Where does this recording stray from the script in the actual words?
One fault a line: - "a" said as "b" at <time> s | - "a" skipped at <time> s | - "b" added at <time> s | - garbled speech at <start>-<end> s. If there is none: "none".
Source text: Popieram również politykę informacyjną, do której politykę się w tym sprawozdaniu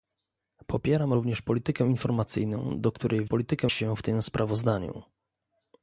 none